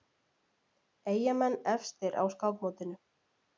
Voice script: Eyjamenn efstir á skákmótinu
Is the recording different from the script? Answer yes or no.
no